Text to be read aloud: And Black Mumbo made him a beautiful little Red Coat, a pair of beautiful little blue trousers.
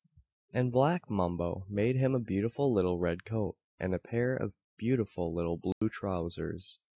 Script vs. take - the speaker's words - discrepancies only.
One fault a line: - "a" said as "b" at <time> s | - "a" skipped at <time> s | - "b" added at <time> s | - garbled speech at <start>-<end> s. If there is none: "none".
- "and" added at 3.8 s